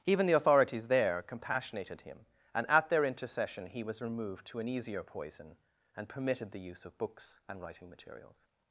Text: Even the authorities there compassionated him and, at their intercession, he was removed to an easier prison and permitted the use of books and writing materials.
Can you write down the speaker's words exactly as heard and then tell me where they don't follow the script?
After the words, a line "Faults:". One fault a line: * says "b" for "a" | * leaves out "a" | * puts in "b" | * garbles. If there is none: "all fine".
Even the authorities there compassionated him and, at their intercession, he was removed to an easier poison and permitted the use of books and writing materials.
Faults:
* says "poison" for "prison"